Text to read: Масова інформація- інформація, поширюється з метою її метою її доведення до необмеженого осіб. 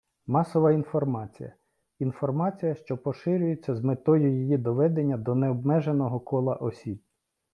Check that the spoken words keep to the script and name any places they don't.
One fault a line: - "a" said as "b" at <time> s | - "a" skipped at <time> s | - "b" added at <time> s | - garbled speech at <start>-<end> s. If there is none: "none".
- "що" added at 2.8 s
- "метою її" skipped at 4.6 s
- "кола" added at 6.2 s